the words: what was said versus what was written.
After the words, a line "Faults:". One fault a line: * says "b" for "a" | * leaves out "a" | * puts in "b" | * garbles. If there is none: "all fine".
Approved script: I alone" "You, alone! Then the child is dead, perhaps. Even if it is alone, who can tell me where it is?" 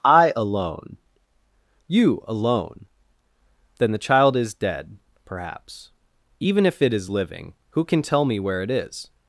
I alone" "You, alone! Then the child is dead, perhaps. Even if it is living, who can tell me where it is?"
Faults:
* says "living" for "alone"